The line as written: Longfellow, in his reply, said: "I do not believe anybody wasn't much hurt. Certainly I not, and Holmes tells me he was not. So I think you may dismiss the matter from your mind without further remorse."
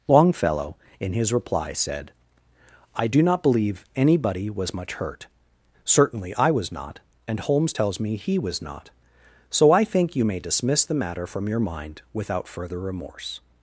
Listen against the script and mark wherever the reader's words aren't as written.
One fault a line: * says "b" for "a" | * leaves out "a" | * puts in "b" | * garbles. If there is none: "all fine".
* says "was" for "wasn't"
* puts in "was"